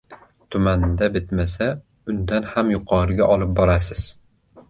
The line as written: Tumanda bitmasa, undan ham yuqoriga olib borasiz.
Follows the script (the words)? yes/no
yes